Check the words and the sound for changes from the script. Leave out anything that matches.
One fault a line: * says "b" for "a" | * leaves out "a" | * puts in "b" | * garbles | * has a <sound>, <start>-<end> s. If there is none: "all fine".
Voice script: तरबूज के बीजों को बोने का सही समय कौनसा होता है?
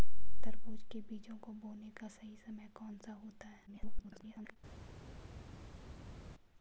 * garbles